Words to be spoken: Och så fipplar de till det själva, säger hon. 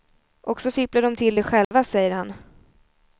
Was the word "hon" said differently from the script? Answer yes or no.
yes